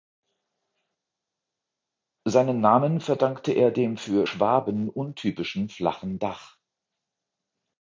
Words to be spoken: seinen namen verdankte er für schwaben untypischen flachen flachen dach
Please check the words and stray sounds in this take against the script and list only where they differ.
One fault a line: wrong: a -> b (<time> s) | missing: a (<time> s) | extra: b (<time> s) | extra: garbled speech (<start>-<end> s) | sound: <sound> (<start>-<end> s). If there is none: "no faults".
extra: dem (3.7 s)
missing: flachen (6.2 s)